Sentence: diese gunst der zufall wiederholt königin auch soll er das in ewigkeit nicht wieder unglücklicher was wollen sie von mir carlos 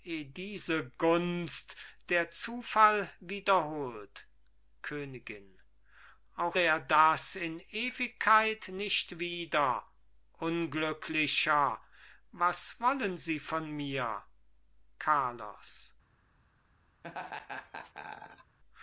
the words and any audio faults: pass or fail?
fail